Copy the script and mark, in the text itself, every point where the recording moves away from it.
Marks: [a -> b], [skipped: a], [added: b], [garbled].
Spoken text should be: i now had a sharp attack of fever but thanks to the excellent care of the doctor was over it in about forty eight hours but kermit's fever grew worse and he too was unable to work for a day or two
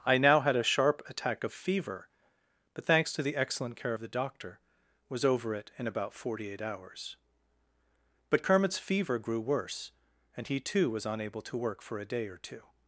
i now had a sharp attack of fever but thanks to the excellent care of the doctor was over it in about forty eight hours but kermit's fever grew worse and he too was unable to work for a day or two